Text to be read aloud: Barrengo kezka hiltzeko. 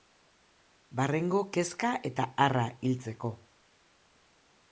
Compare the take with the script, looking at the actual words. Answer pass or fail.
fail